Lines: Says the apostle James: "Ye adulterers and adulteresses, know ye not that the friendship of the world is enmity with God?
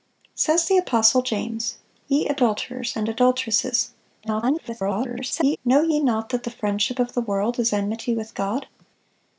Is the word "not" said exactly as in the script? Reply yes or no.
yes